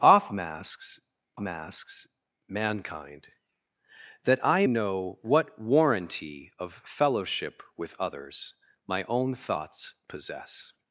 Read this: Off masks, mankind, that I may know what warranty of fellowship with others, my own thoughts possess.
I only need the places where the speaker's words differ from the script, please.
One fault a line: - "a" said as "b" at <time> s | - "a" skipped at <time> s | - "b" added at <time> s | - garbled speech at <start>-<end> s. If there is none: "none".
- "masks" added at 1.4 s
- "may" skipped at 4.7 s